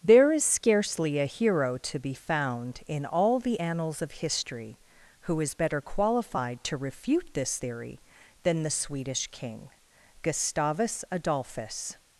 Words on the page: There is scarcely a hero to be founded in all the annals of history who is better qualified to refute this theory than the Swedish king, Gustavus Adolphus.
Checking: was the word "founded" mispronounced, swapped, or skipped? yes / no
yes